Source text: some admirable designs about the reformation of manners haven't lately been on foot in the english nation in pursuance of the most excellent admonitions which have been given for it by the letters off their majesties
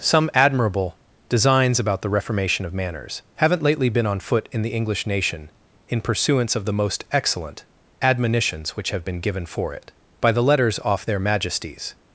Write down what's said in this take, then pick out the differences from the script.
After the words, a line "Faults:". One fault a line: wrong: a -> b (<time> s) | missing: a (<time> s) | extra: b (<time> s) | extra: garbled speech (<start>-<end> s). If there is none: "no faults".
some admirable designs about the reformation of manners haven't lately been on foot in the english nation in pursuance of the most excellent admonitions which have been given for it by the letters off their majesties
Faults:
no faults